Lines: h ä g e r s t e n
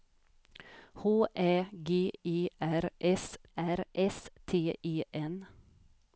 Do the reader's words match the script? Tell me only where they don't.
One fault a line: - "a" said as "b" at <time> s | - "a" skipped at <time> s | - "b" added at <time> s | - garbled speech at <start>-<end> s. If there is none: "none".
- "r s" added at 3.6 s